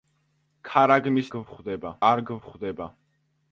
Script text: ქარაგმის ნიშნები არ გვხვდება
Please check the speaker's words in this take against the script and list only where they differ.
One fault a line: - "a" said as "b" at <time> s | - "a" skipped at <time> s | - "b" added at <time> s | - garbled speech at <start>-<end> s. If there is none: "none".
- "ნიშნები" said as "გვხვდება" at 1.4 s